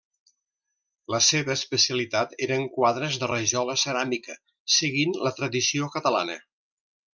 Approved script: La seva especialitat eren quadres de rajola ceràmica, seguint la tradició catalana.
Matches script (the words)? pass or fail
pass